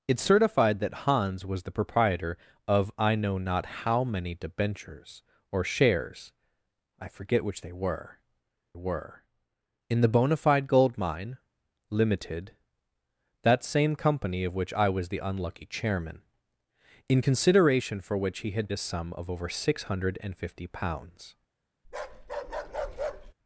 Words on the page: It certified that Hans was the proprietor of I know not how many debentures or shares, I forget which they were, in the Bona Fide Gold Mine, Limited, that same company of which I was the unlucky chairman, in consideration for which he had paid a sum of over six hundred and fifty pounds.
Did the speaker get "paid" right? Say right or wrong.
wrong